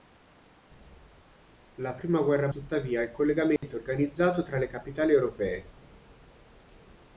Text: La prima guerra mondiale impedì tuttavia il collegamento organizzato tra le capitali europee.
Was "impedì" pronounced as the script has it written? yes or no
no